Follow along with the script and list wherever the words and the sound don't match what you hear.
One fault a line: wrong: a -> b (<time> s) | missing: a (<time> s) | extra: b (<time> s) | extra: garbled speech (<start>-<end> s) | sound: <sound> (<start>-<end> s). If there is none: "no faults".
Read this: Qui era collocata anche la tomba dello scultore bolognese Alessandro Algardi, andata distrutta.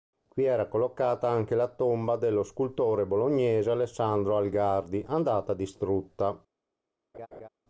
sound: laugh (7.1-7.5 s)